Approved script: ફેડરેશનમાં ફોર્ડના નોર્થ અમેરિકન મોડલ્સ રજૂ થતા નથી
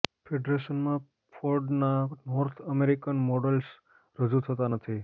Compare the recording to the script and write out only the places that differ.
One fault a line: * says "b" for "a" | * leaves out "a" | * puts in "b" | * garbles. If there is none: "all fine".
all fine